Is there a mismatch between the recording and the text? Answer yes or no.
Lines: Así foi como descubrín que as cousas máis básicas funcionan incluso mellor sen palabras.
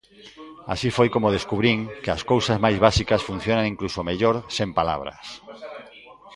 no